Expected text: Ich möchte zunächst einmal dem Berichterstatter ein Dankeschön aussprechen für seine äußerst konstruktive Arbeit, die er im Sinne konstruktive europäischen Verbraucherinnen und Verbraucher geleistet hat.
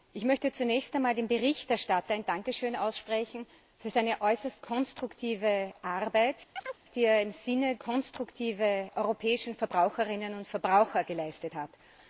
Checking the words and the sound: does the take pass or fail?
fail